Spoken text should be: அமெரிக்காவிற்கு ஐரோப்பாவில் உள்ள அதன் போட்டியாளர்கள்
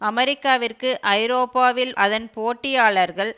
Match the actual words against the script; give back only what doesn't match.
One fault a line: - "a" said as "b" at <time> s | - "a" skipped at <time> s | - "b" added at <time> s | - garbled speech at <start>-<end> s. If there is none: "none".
- "உள்ள" skipped at 1.9 s